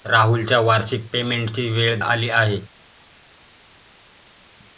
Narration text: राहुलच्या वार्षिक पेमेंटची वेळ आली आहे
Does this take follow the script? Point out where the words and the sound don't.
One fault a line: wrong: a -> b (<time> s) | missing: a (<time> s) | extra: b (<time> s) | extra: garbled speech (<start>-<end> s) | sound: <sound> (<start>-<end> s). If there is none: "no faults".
no faults